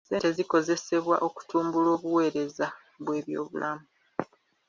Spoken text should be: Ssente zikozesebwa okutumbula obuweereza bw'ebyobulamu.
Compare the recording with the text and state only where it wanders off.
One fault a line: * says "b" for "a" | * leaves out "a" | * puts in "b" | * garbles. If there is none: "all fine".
all fine